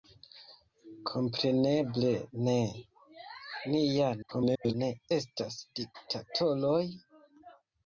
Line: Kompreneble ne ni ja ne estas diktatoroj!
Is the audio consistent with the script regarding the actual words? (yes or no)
no